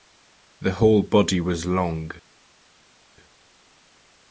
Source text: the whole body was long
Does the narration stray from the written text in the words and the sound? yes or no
no